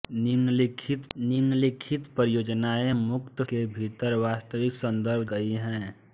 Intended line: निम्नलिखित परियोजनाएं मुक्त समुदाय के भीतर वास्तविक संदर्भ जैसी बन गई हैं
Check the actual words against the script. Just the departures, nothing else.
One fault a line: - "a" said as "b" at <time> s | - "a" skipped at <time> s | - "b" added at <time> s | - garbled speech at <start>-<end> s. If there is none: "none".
- "निम्नलिखित" added at 1.2 s
- "समुदाय" skipped at 3.4 s
- "जैसी बन" skipped at 5.2 s